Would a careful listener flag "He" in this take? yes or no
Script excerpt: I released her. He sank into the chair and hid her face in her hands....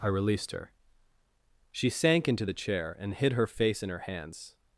yes